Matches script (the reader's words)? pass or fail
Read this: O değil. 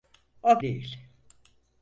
pass